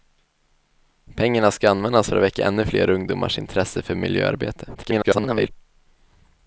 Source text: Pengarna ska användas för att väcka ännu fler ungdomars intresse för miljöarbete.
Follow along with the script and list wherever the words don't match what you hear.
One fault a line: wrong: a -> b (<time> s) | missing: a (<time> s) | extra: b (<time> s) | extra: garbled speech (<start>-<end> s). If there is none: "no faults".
extra: garbled speech (4.7-5.5 s)